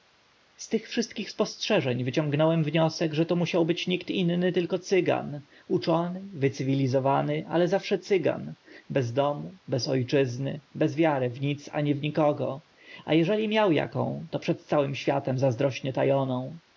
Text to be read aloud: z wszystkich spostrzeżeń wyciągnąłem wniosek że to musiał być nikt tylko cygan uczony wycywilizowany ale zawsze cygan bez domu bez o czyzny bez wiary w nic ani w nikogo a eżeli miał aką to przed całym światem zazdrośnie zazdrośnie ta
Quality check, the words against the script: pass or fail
fail